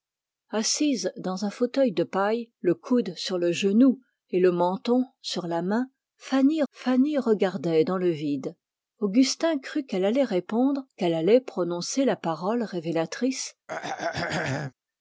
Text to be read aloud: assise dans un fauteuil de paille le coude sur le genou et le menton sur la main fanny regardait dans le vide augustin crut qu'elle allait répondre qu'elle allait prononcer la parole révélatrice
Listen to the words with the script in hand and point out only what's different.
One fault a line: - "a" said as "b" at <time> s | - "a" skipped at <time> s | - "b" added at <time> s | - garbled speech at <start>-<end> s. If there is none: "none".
- "fanny" added at 6.7 s